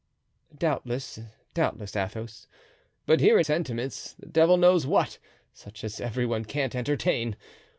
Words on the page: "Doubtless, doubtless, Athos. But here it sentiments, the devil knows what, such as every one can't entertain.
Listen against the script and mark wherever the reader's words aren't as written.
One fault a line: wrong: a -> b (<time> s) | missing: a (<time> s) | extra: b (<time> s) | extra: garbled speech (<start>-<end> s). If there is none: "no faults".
no faults